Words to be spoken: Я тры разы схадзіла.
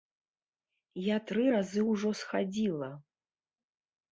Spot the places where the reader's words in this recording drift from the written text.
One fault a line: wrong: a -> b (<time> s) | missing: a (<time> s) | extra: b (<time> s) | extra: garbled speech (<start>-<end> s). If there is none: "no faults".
extra: ўжо (1.9 s)